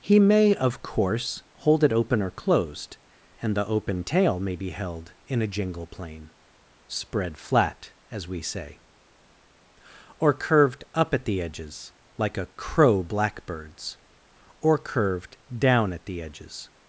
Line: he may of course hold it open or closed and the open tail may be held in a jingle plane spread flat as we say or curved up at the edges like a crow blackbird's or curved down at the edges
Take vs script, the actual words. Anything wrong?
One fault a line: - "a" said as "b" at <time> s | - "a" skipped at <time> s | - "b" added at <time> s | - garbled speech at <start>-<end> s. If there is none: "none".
none